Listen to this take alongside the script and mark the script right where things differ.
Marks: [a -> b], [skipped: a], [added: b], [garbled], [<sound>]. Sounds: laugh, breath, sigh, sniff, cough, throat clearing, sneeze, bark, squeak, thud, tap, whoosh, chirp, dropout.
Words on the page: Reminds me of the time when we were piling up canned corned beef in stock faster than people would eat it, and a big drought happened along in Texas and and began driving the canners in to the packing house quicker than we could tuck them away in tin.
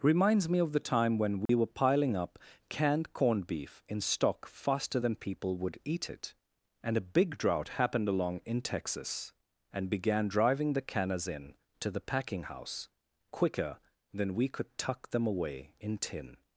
Reminds me of the time when we [dropout] were piling up canned corned beef in stock faster than people would eat it, and a big drought happened along in Texas and [skipped: and] began driving the canners in to the packing house quicker than we could tuck them away in tin.